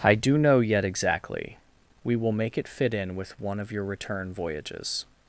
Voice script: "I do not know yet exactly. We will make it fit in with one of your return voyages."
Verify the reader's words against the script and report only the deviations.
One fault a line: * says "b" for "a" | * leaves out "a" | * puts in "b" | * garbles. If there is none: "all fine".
* leaves out "not"